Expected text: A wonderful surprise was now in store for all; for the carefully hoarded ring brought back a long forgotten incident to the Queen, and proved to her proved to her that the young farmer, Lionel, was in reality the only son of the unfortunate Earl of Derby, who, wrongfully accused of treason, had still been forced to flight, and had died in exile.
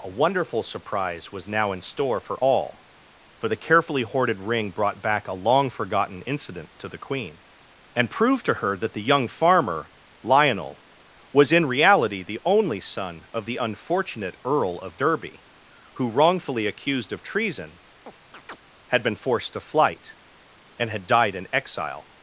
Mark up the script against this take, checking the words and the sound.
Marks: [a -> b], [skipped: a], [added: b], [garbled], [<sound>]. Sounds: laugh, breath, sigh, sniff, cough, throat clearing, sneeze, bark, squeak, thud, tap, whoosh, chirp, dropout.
A wonderful surprise was now in store for all; for the carefully hoarded ring brought back a long forgotten incident to the Queen, and proved to her [skipped: proved to her] that the young farmer, Lionel, was in reality the only son of the unfortunate Earl of Derby, who, wrongfully accused of treason, [chirp] had [skipped: still] been forced to flight, and had died in exile.